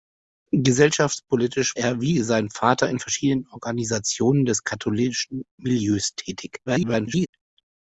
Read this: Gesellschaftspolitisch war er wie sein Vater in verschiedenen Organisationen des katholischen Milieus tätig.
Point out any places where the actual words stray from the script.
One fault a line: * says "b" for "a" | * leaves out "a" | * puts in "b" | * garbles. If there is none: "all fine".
* leaves out "war"
* garbles